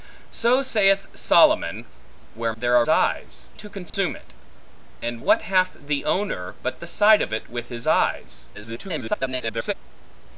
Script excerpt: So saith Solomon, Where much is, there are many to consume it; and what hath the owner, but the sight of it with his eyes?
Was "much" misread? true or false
true